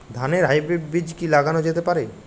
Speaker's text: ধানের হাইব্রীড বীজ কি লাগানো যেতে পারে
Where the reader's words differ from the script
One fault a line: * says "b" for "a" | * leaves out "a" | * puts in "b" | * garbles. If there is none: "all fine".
all fine